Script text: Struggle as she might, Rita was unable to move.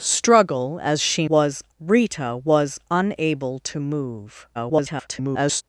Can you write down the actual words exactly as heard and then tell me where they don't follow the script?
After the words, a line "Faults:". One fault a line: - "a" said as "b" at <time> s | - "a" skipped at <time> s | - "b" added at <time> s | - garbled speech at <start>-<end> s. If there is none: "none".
Struggle as she was, Rita was unable to move. [garbled]
Faults:
- "might" said as "was" at 1.3 s
- garbled speech at 4.5-5.6 s